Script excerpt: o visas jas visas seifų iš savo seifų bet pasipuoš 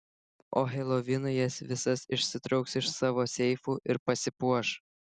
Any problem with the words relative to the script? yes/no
yes